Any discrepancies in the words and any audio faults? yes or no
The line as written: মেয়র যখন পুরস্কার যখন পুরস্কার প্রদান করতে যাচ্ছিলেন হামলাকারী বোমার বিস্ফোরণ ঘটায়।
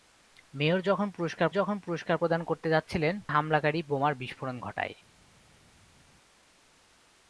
no